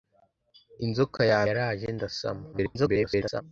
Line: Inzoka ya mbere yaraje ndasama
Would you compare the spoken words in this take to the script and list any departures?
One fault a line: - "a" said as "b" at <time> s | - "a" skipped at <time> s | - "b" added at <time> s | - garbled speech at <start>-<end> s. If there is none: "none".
- "mbere" skipped at 1.4 s
- garbled speech at 2.5-3.4 s